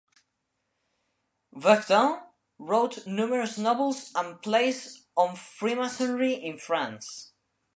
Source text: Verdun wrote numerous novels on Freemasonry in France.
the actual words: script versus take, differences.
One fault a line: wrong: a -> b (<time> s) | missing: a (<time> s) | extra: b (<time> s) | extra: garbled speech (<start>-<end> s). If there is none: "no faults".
extra: and plays (4.1 s)